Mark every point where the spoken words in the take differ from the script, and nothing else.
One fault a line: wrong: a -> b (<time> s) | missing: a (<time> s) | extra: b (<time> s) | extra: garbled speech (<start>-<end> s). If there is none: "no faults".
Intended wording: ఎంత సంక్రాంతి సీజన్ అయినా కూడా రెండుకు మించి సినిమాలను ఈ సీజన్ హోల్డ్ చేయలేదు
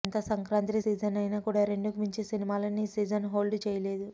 no faults